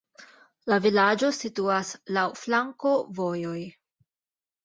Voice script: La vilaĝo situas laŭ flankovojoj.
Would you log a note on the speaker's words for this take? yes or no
no